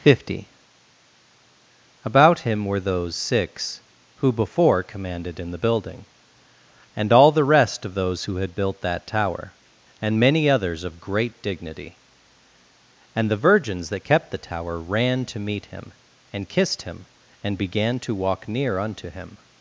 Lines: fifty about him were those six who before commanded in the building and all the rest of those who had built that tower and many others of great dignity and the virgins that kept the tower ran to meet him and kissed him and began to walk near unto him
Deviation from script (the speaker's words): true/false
false